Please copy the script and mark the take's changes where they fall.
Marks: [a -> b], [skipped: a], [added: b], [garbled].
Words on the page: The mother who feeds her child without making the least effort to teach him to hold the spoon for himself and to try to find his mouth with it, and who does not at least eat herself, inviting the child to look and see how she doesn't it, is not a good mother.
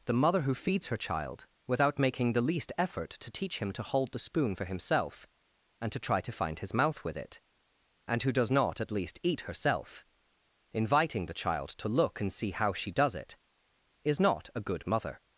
The mother who feeds her child without making the least effort to teach him to hold the spoon for himself and to try to find his mouth with it, and who does not at least eat herself, inviting the child to look and see how she [doesn't -> does] it, is not a good mother.